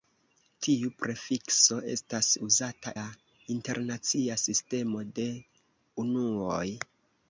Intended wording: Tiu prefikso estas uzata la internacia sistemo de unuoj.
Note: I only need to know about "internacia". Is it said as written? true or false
true